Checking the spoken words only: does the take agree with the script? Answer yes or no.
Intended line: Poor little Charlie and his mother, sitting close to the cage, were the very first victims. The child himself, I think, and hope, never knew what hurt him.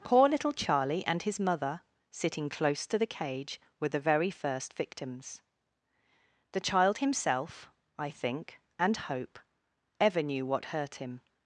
no